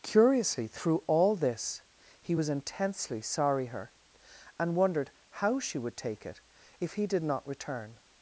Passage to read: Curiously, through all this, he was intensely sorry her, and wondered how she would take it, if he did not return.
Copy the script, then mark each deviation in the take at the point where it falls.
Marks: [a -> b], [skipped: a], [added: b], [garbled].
Curiously, through all this, he was intensely sorry her, and wondered how she would take it, if he did not return.